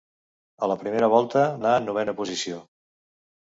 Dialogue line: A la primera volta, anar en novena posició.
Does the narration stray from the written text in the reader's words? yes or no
no